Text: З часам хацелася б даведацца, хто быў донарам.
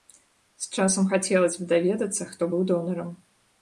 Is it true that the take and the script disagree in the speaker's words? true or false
false